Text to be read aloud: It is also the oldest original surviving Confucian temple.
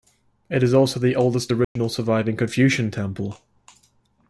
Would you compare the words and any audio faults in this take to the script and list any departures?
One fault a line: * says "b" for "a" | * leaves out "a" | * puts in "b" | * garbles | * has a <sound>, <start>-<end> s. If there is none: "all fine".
* has a dropout, 1.6-1.8 s